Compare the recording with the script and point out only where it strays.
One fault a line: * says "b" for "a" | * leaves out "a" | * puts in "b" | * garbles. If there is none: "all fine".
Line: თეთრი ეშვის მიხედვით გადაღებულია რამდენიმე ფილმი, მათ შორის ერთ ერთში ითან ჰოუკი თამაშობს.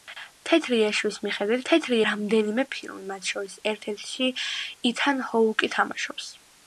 * says "თეთრი" for "გადაღებულია"